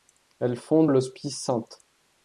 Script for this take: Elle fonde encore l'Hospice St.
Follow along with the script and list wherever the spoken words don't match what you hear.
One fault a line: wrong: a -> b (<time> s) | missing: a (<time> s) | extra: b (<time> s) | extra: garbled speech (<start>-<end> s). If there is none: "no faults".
missing: encore (0.9 s)